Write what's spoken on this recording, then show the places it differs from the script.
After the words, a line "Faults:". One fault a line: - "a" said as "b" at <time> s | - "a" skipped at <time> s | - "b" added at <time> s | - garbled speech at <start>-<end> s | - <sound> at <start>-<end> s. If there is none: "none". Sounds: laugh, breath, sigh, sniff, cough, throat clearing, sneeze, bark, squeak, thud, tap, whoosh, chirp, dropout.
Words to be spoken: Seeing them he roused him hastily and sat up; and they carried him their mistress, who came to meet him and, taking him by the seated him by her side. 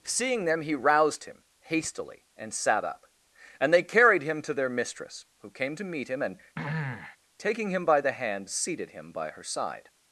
Seeing them he roused him hastily and sat up; and they carried him to their mistress, who came to meet him and, taking him by the hand, seated him by her side.
Faults:
- "to" added at 4.4 s
- throat clearing at 6.5-7.2 s
- "hand" added at 8.1 s